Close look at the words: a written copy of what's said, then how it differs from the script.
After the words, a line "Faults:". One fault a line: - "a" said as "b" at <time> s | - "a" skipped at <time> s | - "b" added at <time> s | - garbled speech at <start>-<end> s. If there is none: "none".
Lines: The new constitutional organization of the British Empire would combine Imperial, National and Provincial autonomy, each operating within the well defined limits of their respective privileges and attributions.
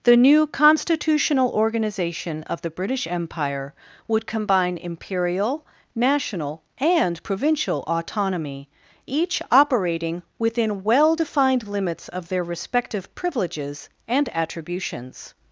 The new constitutional organization of the British Empire would combine Imperial, National and Provincial autonomy, each operating within well defined limits of their respective privileges and attributions.
Faults:
- "the" skipped at 10.8 s